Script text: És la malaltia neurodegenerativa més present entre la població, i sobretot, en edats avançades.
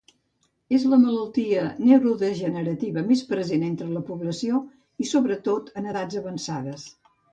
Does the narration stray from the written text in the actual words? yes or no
no